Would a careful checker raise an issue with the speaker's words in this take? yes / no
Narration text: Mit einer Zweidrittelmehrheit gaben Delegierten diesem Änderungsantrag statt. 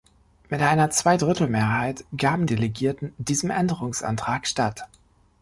no